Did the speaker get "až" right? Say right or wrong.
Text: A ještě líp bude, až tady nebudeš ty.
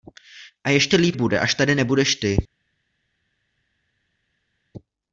right